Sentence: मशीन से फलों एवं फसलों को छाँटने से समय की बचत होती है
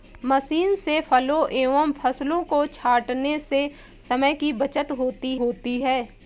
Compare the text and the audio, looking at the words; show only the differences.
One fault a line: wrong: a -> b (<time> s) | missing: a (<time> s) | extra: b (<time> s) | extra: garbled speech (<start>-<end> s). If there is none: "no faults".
extra: होती (5.4 s)